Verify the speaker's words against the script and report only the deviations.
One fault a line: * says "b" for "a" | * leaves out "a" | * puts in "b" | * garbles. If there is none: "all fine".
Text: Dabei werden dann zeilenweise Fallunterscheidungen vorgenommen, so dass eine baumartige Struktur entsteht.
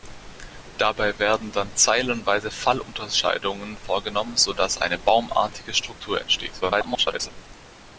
* garbles